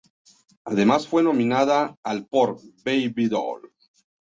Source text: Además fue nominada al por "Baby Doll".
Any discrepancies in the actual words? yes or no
no